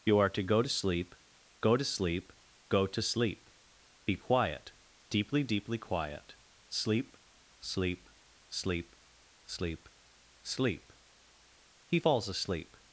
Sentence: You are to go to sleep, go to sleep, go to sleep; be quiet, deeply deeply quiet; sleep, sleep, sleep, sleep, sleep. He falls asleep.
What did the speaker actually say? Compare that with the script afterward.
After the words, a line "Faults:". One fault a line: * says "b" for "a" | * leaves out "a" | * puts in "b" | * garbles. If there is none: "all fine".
You are to go to sleep, go to sleep, go to sleep; be quiet, deeply deeply quiet; sleep, sleep, sleep, sleep, sleep. He falls asleep.
Faults:
all fine